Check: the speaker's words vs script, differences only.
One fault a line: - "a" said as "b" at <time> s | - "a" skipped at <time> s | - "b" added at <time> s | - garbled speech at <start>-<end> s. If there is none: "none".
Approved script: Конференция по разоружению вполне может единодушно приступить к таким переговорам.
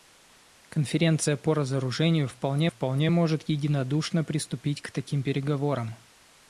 - "вполне" added at 2.6 s